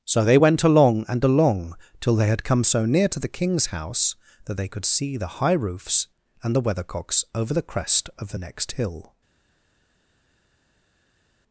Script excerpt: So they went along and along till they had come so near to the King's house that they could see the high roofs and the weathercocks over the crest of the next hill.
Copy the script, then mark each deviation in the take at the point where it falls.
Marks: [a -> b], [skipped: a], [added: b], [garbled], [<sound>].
So they went along and along till they had come so near to the King's house that they could see the high roofs and the weathercocks over the crest of the next hill.